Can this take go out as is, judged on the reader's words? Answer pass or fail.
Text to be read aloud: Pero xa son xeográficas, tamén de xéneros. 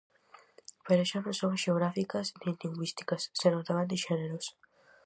fail